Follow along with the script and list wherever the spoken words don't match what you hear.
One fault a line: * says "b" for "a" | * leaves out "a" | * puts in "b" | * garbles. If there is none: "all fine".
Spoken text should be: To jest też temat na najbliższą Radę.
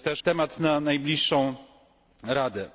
* leaves out "też"